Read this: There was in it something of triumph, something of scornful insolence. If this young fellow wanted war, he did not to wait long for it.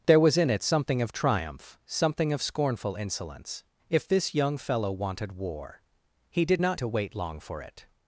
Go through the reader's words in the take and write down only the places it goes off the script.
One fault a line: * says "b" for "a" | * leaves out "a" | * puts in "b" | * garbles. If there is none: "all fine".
all fine